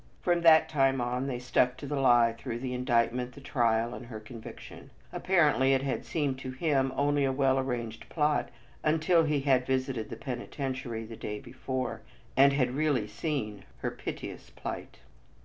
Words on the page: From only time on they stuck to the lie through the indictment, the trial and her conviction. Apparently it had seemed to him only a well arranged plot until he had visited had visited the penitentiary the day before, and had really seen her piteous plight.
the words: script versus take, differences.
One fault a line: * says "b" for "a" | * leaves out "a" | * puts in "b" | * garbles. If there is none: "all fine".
* says "that" for "only"
* leaves out "had visited"